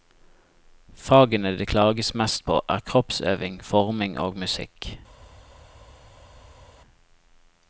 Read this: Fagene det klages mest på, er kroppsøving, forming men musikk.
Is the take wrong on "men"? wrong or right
wrong